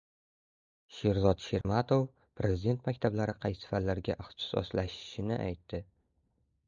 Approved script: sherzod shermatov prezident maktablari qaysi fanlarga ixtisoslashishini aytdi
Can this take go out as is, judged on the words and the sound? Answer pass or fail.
fail